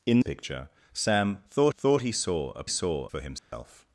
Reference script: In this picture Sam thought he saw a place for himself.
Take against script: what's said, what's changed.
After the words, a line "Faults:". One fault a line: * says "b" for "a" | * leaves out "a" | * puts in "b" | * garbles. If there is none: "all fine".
In picture Sam thought thought he saw a saw for himself.
Faults:
* leaves out "this"
* puts in "thought"
* says "saw" for "place"